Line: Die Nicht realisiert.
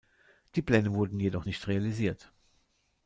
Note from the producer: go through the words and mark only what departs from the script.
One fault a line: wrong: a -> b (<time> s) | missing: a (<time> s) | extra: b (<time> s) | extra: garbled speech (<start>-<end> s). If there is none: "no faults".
extra: Pläne wurden jedoch (0.6 s)